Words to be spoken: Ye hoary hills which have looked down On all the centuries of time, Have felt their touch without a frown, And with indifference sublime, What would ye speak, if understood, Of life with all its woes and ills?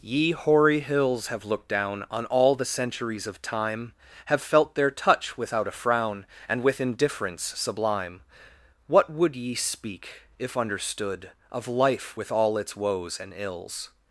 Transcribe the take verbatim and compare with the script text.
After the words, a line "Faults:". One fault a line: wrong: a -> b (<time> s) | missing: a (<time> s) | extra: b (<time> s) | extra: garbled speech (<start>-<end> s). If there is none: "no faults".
Ye hoary hills have looked down On all the centuries of time, Have felt their touch without a frown, And with indifference sublime, What would ye speak, if understood, Of life with all its woes and ills?
Faults:
missing: which (1.3 s)